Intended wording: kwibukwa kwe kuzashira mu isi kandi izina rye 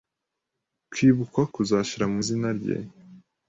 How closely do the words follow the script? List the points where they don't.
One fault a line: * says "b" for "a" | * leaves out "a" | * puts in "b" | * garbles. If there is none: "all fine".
* leaves out "kwe"
* leaves out "isi kandi"